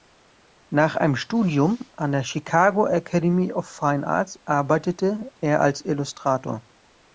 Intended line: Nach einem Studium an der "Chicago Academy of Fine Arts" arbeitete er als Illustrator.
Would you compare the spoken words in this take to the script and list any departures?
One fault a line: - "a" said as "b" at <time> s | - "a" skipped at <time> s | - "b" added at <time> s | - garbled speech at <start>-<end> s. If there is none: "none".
none